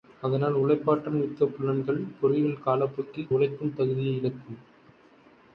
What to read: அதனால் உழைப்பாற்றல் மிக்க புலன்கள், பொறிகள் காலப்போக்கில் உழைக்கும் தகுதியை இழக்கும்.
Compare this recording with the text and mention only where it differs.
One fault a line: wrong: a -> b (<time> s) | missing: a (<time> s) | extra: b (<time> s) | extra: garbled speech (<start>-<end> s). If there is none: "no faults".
no faults